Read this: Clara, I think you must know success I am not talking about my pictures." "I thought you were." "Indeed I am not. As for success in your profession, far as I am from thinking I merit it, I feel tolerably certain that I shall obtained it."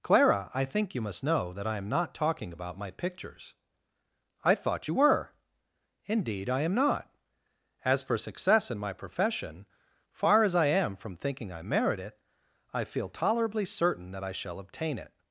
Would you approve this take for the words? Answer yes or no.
no